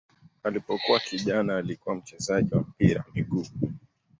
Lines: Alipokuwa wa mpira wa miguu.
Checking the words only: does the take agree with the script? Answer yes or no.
no